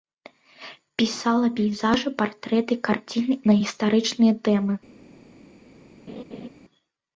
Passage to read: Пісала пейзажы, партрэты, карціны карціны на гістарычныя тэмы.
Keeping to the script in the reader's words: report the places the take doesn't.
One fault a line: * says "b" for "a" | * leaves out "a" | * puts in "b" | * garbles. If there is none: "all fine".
* leaves out "карціны"